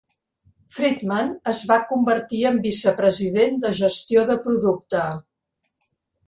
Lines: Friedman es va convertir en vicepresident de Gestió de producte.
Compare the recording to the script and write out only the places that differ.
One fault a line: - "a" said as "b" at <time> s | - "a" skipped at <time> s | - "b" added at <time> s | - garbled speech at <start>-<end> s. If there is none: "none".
none